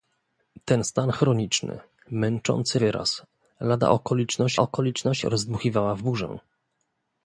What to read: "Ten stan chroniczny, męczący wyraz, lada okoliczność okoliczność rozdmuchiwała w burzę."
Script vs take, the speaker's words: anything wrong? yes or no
no